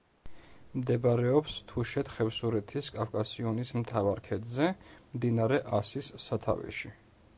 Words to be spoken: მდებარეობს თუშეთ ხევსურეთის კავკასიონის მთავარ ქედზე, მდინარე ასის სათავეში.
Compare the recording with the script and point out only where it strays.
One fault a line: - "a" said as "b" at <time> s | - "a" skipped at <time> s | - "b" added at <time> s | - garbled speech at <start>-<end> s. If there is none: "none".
none